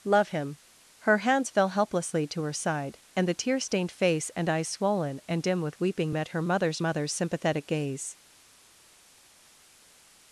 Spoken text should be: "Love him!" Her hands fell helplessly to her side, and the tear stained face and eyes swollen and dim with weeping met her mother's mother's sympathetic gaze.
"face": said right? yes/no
yes